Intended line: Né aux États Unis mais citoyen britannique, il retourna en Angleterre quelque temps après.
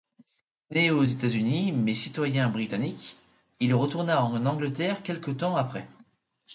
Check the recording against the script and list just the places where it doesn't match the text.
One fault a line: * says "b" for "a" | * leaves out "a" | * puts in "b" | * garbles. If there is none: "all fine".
all fine